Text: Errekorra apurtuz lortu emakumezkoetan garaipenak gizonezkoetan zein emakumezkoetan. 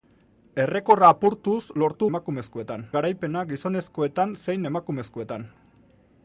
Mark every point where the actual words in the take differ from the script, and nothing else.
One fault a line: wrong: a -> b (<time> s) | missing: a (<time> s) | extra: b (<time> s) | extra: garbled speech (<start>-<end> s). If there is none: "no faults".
no faults